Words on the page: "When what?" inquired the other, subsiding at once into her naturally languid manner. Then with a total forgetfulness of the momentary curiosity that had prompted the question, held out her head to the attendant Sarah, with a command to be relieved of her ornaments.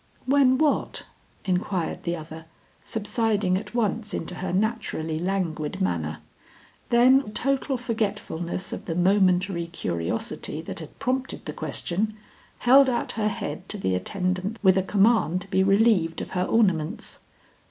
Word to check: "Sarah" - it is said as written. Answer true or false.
false